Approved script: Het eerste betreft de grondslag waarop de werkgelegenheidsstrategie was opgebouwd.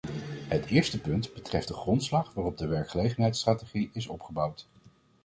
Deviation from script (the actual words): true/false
true